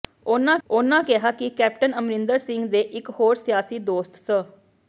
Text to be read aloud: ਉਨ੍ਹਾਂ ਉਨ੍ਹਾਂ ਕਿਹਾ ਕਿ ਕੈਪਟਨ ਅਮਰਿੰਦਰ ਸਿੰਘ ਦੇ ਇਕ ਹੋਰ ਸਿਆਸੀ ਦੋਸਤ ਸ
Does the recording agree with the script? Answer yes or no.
yes